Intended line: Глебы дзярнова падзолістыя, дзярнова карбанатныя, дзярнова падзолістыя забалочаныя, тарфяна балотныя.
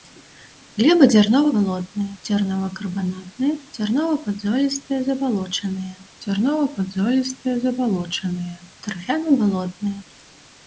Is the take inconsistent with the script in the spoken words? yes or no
yes